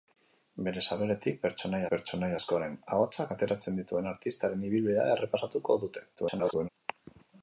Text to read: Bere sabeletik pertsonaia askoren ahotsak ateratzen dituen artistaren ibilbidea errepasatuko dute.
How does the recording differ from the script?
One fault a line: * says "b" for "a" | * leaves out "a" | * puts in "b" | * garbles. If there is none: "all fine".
* puts in "pertsonaia"
* garbles